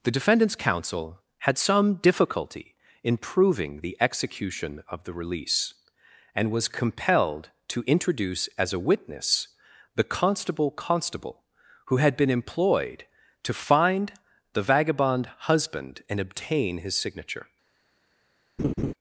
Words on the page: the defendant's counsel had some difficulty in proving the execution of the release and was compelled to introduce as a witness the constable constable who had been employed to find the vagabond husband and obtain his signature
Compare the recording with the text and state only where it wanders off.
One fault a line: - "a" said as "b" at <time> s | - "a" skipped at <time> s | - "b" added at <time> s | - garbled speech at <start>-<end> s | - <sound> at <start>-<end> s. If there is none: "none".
- laugh at 18.6-18.9 s